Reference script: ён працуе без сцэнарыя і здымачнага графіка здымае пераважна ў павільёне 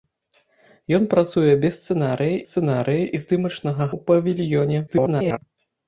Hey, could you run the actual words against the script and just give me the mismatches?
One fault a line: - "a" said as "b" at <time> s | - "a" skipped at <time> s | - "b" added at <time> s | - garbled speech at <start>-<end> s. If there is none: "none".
- "сцэнарыя" added at 2.5 s
- "графіка здымае пераважна" skipped at 3.9 s
- garbled speech at 4.9-5.4 s